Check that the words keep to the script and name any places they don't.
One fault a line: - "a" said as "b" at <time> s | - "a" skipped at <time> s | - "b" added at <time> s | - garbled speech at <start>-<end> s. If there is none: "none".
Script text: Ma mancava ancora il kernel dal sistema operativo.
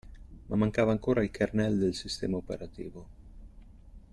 - "dal" said as "del" at 1.8 s